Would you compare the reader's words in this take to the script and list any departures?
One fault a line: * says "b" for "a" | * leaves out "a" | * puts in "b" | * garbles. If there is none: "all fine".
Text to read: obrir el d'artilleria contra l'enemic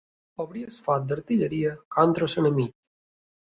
* puts in "foc"